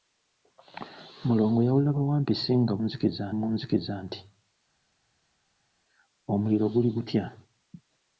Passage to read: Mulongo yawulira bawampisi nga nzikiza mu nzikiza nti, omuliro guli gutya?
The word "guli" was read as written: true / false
true